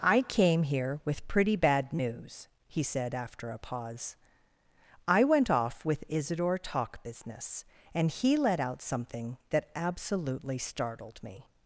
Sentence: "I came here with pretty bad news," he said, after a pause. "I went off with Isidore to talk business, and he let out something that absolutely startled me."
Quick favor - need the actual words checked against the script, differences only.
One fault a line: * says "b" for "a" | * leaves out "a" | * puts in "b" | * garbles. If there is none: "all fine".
* leaves out "to"